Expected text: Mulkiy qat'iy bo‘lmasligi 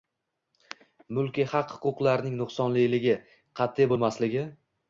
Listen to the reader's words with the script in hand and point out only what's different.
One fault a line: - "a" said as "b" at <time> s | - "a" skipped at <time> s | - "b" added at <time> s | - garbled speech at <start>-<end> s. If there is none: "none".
- "haq huquqlarning nuqsonliligi" added at 1.5 s